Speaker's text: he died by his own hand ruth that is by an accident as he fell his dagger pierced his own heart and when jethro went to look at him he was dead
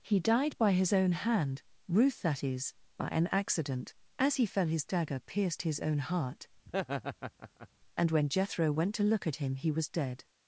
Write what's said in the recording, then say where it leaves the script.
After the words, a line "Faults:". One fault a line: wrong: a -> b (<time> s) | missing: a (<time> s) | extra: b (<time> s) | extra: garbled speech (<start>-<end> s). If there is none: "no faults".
he died by his own hand ruth that is by an accident as he fell his dagger pierced his own heart and when jethro went to look at him he was dead
Faults:
no faults